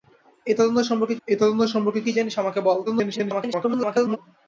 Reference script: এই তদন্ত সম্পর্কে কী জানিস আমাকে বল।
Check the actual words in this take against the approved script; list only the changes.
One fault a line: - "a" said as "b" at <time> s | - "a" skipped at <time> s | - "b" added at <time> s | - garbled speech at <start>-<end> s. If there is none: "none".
- "এই তদন্ত সম্পর্কে" added at 1.3 s
- garbled speech at 2.9-4.2 s